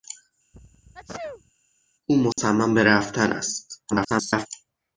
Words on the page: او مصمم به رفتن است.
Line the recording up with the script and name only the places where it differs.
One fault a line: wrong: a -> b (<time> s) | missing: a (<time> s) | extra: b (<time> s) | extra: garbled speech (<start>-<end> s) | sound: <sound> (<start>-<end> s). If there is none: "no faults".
sound: sneeze (0.5-1.5 s)
sound: dropout (2.3-2.4 s)
extra: garbled speech (3.9-4.5 s)